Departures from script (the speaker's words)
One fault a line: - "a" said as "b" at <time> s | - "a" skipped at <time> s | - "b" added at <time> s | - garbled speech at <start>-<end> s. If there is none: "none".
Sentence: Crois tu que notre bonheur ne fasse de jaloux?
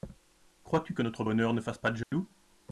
- "pas" added at 1.8 s